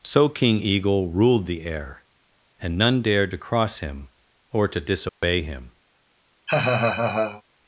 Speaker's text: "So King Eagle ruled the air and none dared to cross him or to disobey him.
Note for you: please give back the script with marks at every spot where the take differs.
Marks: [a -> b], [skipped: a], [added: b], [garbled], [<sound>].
"So King Eagle ruled the air and none dared to cross him or to disobey [dropout] him. [laugh]